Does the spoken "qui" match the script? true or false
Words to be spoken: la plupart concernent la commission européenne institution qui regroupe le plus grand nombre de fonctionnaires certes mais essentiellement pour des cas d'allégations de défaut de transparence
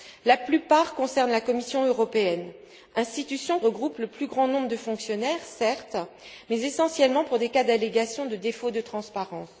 false